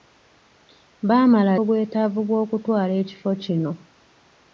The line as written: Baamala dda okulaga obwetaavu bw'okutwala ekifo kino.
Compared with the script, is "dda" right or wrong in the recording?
wrong